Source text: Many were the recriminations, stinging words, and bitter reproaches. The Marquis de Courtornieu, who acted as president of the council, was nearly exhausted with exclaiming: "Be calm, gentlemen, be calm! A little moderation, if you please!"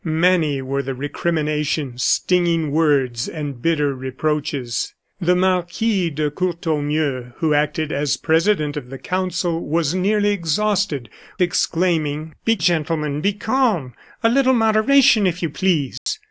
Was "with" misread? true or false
true